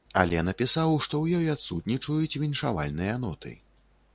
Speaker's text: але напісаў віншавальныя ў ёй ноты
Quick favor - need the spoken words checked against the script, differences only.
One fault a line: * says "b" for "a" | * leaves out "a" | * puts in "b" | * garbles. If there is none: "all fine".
* says "што" for "віншавальныя"
* puts in "адсутнічаюць віншавальныя"